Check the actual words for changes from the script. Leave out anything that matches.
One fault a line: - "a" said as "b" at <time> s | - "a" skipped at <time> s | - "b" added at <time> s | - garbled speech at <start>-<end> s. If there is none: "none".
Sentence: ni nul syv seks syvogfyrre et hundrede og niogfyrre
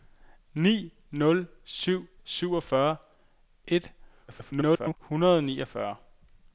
- "seks" skipped at 2.1 s
- garbled speech at 4.3-5.0 s